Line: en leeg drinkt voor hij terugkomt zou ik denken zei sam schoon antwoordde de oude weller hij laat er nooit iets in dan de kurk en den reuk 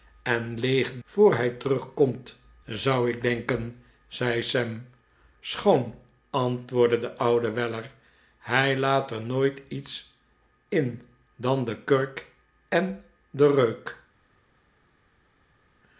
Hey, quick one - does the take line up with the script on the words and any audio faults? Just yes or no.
no